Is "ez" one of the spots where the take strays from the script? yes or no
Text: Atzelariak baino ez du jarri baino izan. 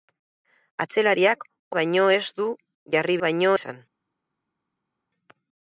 no